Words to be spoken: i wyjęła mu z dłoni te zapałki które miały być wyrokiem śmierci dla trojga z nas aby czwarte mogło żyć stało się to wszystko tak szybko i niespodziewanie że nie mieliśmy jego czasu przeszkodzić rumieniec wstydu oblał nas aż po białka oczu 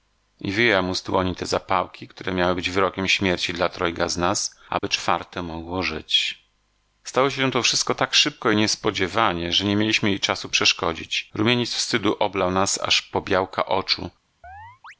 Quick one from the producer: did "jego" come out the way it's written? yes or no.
no